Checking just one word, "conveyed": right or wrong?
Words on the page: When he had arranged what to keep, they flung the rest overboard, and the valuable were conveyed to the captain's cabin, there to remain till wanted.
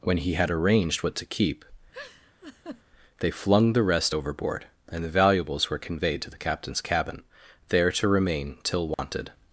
right